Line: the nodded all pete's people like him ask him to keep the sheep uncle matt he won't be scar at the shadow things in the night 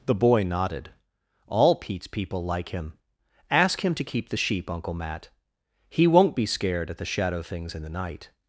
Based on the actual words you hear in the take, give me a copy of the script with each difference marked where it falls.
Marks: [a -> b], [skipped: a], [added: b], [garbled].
the [added: boy] nodded all pete's people like him ask him to keep the sheep uncle matt he won't be [scar -> scared] at the shadow things in the night